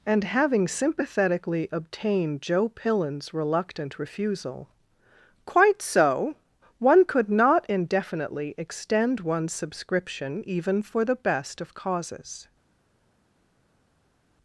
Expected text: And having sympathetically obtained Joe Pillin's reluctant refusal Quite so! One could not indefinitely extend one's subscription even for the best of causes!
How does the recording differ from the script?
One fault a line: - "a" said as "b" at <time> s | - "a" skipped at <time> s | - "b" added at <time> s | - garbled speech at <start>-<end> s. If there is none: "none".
none